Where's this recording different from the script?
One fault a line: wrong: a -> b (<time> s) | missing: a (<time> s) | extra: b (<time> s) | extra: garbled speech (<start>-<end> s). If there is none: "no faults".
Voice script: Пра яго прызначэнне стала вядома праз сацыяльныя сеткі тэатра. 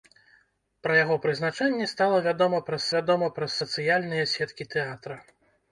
extra: вядома праз (3.0 s)